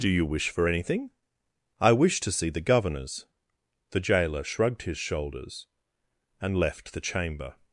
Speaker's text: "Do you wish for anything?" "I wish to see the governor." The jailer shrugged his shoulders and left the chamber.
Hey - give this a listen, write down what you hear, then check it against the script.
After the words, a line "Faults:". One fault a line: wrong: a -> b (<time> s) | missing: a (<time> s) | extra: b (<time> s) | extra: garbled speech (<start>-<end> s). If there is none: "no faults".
"Do you wish for anything?" "I wish to see the governors." The jailer shrugged his shoulders and left the chamber.
Faults:
wrong: governor -> governors (2.6 s)